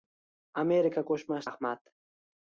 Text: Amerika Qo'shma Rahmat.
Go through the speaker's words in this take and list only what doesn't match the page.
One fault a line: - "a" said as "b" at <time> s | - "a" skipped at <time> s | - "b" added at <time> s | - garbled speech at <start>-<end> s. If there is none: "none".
none